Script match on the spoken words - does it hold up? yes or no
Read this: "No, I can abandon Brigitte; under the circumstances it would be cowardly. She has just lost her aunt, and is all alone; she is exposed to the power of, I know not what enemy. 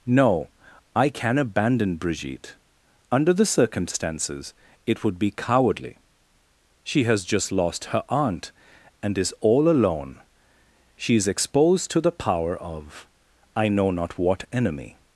yes